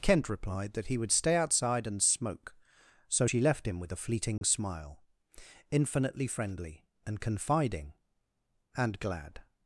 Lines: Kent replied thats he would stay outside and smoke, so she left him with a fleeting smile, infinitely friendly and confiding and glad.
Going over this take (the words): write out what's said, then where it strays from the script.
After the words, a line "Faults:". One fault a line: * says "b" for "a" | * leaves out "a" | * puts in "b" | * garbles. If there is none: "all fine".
Kent replied that he would stay outside and smoke, so she left him with a fleeting smile, infinitely friendly and confiding and glad.
Faults:
* says "that" for "thats"